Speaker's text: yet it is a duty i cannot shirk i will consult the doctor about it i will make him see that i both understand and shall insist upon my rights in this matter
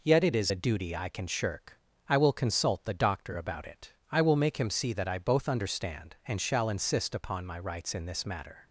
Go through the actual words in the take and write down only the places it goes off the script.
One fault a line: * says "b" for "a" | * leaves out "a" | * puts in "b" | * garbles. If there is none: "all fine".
* says "can" for "cannot"